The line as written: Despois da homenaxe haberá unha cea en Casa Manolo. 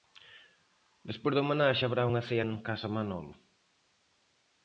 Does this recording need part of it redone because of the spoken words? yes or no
no